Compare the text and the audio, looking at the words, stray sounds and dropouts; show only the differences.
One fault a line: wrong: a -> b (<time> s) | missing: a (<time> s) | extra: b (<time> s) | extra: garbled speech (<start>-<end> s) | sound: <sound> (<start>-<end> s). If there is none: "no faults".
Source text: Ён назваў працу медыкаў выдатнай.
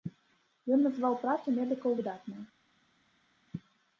no faults